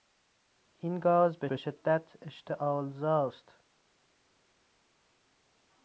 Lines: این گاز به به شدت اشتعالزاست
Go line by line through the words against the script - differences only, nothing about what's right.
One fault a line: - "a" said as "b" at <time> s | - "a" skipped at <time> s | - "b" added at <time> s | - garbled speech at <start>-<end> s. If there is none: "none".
none